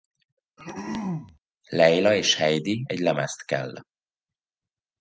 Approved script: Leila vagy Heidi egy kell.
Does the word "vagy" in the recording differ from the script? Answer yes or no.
yes